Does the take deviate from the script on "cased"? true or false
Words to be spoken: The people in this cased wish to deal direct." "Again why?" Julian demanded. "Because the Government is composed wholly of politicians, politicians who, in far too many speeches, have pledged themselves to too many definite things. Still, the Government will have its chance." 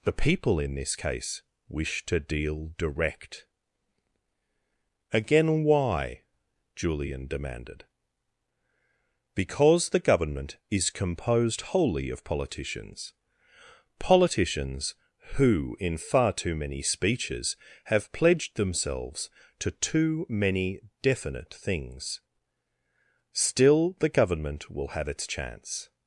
true